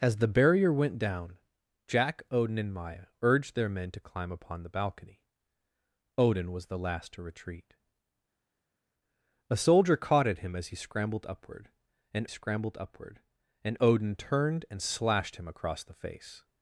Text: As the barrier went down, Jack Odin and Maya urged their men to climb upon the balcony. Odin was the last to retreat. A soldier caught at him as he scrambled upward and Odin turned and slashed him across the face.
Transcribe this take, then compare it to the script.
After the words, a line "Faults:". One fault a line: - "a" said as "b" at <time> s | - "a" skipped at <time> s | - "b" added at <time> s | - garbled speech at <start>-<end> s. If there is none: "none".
As the barrier went down, Jack Odin and Maya urged their men to climb upon the balcony. Odin was the last to retreat. A soldier caught at him as he scrambled upward and scrambled upward and Odin turned and slashed him across the face.
Faults:
- "scrambled upward and" added at 12.3 s